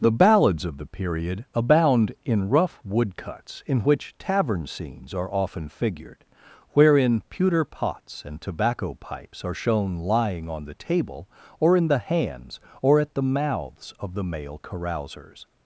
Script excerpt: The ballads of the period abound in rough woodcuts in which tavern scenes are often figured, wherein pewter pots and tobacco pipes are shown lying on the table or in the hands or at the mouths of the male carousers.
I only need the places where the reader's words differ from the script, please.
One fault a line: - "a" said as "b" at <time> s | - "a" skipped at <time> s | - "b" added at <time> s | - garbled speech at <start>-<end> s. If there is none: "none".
none